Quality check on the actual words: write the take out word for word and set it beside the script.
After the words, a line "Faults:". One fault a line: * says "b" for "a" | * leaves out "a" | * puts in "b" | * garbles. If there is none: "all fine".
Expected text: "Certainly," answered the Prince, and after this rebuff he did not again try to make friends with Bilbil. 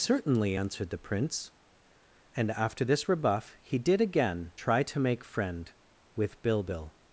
"Certainly," answered the Prince, and after this rebuff he did again try to make friend with Bilbil.
Faults:
* leaves out "not"
* says "friend" for "friends"